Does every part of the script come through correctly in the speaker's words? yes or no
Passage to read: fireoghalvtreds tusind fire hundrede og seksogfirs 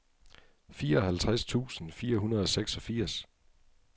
yes